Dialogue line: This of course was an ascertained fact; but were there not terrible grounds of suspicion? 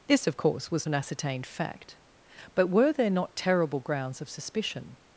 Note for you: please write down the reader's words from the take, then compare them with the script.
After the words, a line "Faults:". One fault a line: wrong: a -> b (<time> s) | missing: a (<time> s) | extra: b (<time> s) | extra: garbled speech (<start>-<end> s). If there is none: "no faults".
This of course was an ascertained fact; but were there not terrible grounds of suspicion?
Faults:
no faults